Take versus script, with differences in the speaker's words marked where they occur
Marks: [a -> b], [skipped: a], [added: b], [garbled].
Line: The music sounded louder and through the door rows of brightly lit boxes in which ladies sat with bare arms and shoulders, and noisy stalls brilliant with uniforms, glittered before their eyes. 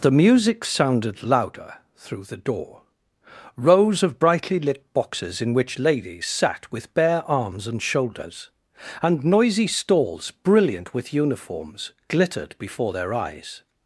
The music sounded louder [skipped: and] through the door rows of brightly lit boxes in which ladies sat with bare arms and shoulders, and noisy stalls brilliant with uniforms, glittered before their eyes.